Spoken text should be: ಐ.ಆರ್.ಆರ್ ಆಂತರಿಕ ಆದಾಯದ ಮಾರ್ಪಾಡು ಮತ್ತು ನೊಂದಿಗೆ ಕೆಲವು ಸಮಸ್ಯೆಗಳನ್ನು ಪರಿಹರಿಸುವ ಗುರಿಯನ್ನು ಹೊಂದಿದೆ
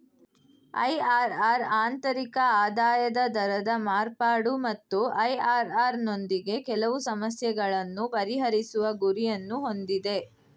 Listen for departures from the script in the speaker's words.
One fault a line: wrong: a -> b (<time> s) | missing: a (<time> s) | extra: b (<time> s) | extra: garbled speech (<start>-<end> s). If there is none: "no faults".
extra: ದರದ (3.3 s)
extra: ಐ.ಆರ್.ಆರ್ (5.2 s)